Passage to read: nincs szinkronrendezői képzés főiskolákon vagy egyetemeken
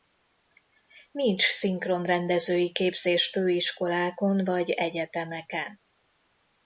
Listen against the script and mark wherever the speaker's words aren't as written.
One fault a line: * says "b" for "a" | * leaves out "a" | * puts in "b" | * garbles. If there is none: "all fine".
all fine